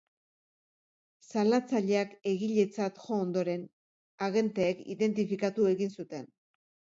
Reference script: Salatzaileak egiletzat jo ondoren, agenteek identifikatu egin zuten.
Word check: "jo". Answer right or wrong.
right